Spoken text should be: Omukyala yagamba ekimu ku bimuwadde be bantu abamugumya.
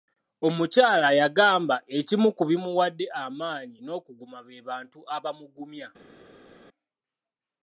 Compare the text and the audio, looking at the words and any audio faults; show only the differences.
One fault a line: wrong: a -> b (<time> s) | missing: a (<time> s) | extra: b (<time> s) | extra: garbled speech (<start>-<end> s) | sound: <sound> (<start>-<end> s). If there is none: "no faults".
extra: amaanyi n'okuguma (3.2 s)